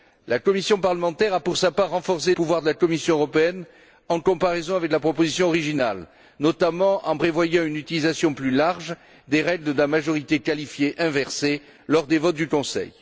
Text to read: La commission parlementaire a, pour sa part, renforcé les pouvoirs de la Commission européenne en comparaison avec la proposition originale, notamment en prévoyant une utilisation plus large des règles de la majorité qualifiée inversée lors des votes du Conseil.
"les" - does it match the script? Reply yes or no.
no